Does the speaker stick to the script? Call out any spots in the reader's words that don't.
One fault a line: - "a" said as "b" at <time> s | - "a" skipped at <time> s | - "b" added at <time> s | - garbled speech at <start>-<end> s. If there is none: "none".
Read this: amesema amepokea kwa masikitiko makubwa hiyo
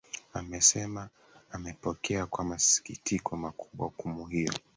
- "hukumu" added at 3.9 s